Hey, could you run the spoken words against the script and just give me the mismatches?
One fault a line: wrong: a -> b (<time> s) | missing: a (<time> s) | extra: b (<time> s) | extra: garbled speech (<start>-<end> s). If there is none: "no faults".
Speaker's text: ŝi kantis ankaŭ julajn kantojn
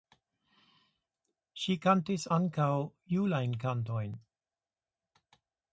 no faults